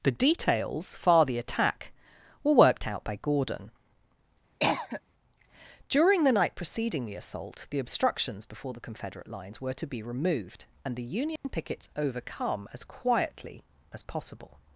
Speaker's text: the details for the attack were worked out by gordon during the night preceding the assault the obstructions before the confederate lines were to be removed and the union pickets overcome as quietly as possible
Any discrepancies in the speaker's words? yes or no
yes